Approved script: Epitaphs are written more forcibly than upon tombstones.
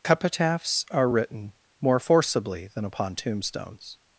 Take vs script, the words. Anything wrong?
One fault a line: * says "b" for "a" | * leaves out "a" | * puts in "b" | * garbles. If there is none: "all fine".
all fine